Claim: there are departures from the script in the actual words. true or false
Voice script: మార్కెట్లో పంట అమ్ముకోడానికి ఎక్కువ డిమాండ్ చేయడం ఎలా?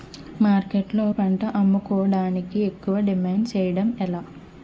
false